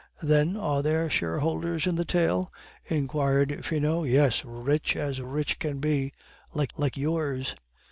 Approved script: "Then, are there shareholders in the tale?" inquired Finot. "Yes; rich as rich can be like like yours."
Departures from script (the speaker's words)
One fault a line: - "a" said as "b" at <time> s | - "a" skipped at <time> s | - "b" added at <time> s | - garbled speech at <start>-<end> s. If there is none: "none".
none